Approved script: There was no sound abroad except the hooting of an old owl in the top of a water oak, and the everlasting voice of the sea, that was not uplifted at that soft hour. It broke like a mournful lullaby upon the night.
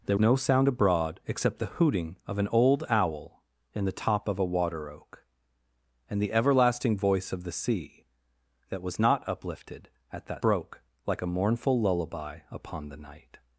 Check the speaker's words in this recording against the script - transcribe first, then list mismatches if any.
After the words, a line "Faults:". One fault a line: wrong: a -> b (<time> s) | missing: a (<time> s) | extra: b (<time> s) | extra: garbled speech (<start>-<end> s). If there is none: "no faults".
There no sound abroad except the hooting of an old owl in the top of a water oak, and the everlasting voice of the sea, that was not uplifted at that broke like a mournful lullaby upon the night.
Faults:
missing: was (0.2 s)
missing: soft hour It (10.4 s)